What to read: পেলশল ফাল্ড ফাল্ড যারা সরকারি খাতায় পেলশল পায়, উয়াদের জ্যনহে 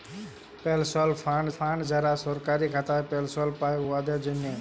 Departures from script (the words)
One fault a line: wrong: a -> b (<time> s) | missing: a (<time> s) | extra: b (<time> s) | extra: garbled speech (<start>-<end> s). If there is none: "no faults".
no faults